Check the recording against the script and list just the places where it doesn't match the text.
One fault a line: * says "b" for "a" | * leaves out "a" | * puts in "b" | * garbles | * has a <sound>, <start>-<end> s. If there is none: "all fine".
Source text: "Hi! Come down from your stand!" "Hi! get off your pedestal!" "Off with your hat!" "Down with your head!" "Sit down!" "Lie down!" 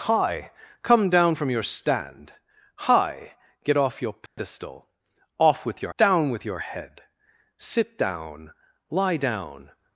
* has a dropout, 4.3-4.4 s
* leaves out "hat"